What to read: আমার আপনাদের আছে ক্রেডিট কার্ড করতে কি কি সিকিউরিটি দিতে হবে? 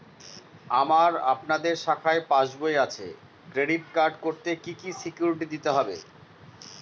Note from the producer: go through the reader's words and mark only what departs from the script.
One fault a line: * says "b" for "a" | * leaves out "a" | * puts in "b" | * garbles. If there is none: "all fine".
* puts in "শাখায় পাসবই"